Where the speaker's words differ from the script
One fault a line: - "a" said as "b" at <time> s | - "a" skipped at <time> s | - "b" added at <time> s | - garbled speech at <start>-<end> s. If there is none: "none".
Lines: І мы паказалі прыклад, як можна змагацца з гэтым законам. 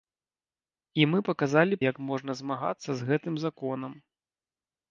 - "прыклад" skipped at 1.8 s